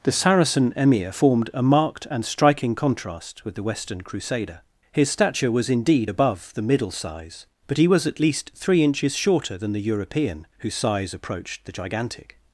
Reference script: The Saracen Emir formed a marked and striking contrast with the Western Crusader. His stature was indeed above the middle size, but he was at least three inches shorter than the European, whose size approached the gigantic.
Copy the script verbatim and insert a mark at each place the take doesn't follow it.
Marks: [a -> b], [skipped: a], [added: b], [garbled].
The Saracen Emir formed a marked and striking contrast with the Western Crusader. His stature was indeed above the middle size, but he was at least three inches shorter than the European, whose size approached the gigantic.